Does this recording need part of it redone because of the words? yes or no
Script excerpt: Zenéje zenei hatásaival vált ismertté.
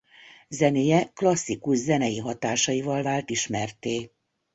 yes